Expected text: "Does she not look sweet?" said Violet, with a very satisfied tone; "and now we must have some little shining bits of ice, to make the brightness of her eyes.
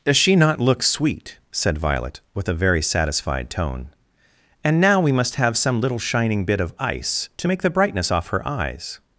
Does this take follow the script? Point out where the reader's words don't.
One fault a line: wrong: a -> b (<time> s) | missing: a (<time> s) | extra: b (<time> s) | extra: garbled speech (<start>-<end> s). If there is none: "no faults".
wrong: bits -> bit (6.5 s)
wrong: of -> off (8.1 s)